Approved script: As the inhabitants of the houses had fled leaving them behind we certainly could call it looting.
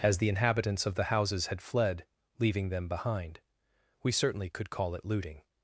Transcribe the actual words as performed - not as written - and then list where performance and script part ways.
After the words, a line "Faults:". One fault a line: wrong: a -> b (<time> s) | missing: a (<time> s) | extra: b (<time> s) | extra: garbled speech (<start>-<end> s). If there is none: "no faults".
As the inhabitants of the houses had fled leaving them behind we certainly could call it looting.
Faults:
no faults